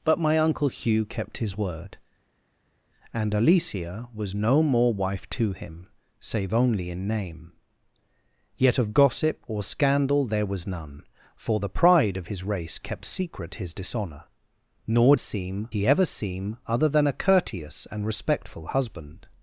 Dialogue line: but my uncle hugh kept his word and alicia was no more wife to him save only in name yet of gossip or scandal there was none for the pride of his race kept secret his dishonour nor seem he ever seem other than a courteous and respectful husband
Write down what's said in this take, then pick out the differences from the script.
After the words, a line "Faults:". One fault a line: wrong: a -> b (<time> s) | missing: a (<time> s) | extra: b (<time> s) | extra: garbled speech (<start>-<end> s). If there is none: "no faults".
but my uncle hugh kept his word and alicia was no more wife to him save only in name yet of gossip or scandal there was none for the pride of his race kept secret his dishonour nor seem he ever seem other than a courteous and respectful husband
Faults:
no faults